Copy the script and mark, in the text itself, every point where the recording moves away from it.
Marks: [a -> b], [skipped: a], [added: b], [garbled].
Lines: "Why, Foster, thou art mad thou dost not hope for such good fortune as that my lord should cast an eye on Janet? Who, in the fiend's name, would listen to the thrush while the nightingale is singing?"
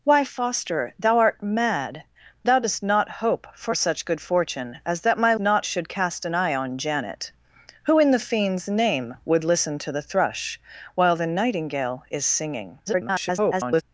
"Why, Foster, thou art mad thou dost not hope for such good fortune as that my [lord -> not] should cast an eye on Janet? Who, in the fiend's name, would listen to the thrush while the nightingale is singing?" [garbled]